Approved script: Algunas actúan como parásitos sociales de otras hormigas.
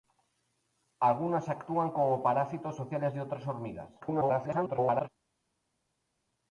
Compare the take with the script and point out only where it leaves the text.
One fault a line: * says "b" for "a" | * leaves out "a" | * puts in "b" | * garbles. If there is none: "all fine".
* garbles